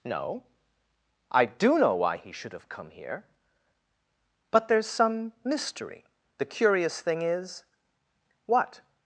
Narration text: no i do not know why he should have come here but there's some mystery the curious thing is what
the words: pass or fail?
fail